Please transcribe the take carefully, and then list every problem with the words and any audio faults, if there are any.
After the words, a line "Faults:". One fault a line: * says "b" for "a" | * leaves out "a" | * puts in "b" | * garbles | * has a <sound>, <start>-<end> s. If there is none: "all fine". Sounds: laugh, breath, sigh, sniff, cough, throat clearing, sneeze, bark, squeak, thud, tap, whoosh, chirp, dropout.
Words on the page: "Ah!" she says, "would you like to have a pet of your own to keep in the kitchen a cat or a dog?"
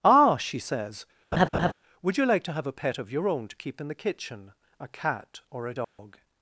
"Ah!" she says, "would you like to have a pet of your own to keep in the kitchen a cat or a dog?"
Faults:
* has a laugh, 1.3-1.7 s
* has a dropout, 5.8-6.0 s